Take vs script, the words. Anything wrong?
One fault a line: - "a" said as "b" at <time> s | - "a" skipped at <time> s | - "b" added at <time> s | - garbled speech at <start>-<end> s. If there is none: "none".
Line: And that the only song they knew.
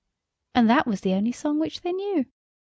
- "was" added at 0.9 s
- "which" added at 1.6 s